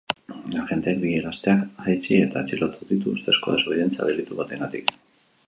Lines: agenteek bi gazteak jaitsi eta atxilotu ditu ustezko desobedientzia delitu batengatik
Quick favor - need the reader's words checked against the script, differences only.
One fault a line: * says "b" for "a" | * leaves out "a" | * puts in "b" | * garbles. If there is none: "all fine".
all fine